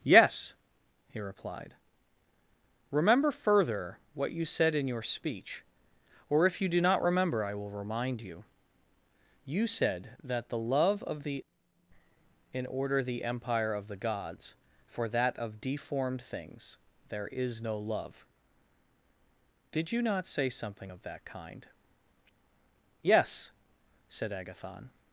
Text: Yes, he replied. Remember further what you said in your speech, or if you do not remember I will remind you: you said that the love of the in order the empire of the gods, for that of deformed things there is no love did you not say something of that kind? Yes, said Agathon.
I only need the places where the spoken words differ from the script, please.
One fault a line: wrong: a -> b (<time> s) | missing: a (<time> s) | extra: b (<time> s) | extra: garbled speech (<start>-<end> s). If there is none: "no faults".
no faults